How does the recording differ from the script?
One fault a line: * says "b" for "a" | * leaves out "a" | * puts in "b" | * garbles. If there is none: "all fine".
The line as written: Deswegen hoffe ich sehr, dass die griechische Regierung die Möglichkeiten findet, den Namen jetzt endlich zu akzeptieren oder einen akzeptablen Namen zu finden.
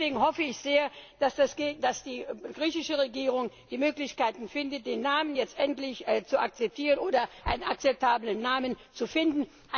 all fine